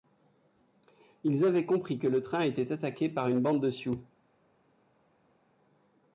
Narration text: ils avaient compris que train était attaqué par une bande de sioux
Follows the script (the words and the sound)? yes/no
no